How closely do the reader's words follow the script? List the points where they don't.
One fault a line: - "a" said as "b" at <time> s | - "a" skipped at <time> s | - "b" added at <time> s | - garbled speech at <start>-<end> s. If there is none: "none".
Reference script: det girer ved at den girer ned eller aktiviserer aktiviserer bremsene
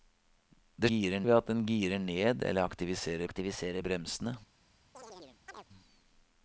none